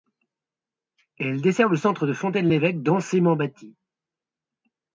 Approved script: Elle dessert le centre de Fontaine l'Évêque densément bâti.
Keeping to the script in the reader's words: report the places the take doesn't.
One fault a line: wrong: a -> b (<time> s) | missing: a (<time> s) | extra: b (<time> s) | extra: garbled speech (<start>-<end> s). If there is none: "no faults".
no faults